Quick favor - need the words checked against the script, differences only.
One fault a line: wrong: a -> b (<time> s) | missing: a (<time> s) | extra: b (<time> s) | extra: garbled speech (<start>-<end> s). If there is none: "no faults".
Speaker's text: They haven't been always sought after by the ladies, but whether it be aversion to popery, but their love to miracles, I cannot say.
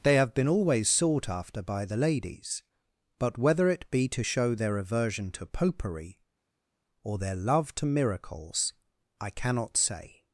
wrong: haven't -> have (0.1 s)
extra: to show their (4.1 s)
wrong: but -> or (7.0 s)